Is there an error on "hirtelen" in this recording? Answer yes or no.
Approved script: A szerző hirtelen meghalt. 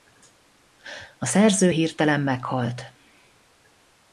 no